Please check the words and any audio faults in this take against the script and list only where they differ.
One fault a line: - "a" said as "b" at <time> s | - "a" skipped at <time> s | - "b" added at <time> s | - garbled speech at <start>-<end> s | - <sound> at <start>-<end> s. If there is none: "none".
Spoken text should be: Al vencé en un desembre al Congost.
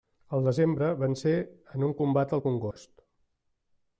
- "desembre" added at 0.5 s
- "desembre" said as "combat" at 2.0 s
- dropout at 2.7-2.8 s